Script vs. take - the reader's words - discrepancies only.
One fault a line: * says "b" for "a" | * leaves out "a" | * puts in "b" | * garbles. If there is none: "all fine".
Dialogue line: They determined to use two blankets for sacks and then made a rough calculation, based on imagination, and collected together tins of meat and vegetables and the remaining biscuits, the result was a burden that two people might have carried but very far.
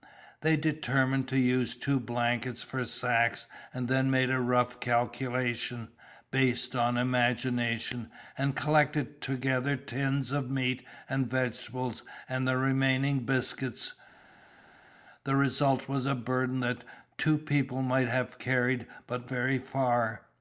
all fine